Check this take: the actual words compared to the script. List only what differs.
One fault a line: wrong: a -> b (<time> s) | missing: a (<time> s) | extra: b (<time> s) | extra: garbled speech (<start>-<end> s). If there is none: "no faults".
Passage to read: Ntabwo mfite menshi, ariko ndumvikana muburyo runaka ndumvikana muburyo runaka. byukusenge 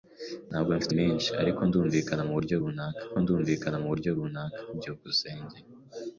no faults